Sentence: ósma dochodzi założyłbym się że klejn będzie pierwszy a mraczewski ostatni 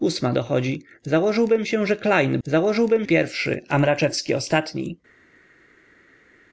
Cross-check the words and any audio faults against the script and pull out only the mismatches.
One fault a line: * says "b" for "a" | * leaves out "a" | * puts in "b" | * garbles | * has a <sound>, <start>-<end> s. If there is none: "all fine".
* says "założyłbym" for "będzie"